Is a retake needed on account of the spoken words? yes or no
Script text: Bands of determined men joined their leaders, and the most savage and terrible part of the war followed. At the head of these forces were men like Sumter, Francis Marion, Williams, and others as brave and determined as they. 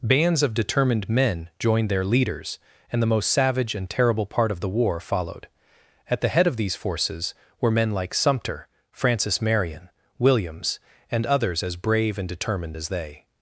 no